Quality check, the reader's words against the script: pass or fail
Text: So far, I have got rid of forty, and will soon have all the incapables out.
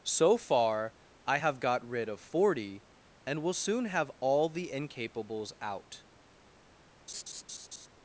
pass